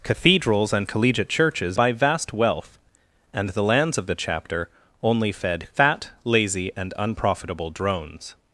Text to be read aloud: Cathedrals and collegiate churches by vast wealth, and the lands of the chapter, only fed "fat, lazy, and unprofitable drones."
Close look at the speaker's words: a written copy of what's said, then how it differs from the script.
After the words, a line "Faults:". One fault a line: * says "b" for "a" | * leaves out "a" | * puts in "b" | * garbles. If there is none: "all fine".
Cathedrals and collegiate churches by vast wealth, and the lands of the chapter, only fed "fat, lazy, and unprofitable drones."
Faults:
all fine